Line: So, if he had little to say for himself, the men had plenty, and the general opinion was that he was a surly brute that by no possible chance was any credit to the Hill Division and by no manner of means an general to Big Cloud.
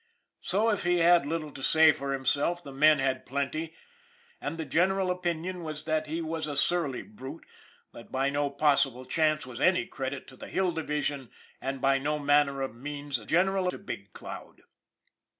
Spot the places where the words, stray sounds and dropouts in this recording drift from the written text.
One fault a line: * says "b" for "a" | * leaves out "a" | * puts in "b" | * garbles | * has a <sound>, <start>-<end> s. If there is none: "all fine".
all fine